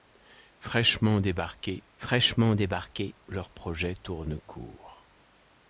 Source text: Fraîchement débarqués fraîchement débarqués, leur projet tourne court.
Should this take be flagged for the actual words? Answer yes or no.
no